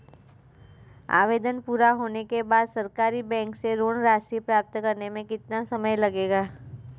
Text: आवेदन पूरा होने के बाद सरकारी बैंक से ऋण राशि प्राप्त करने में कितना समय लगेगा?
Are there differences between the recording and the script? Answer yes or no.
no